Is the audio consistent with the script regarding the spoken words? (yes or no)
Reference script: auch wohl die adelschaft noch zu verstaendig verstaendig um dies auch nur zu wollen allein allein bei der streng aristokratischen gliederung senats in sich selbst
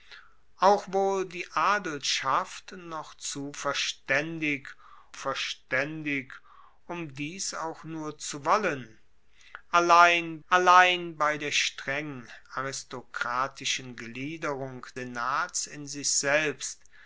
yes